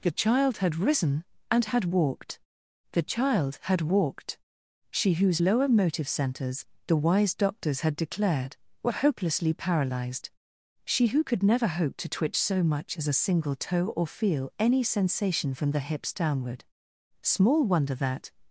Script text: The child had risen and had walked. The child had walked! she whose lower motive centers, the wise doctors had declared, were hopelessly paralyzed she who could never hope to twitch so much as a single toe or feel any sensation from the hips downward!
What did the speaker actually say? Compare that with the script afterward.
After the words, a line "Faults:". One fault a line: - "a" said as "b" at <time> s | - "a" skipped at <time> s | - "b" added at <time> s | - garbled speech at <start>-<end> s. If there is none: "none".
The child had risen and had walked. The child had walked! she whose lower motive centers, the wise doctors had declared, were hopelessly paralyzed she who could never hope to twitch so much as a single toe or feel any sensation from the hips downward! Small wonder that
Faults:
- "Small wonder that" added at 17.2 s